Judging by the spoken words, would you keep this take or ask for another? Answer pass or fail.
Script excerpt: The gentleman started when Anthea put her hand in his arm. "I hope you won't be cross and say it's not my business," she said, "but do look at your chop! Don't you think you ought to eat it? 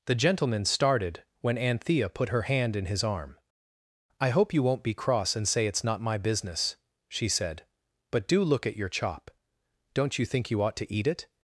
pass